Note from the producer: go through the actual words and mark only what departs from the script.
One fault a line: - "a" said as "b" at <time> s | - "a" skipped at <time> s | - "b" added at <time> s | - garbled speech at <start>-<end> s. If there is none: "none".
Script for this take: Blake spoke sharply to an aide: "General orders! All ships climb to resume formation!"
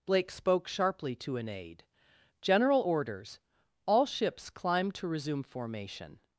none